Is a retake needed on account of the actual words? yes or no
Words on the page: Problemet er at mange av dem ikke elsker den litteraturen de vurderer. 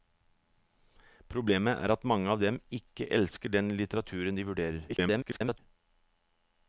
yes